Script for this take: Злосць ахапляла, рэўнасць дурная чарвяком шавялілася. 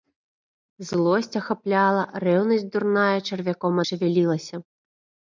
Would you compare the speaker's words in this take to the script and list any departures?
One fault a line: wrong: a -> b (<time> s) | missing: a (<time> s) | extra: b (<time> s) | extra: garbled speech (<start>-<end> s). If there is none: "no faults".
no faults